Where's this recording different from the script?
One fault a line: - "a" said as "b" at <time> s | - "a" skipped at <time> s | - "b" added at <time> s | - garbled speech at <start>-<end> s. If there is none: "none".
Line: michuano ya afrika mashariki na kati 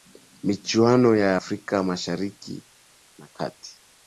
none